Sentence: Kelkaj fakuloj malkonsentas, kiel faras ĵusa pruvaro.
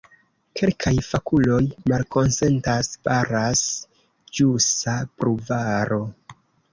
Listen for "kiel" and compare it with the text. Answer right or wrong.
wrong